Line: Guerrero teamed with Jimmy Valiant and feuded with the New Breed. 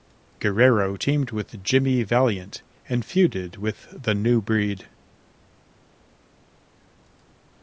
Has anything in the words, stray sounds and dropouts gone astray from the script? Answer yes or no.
no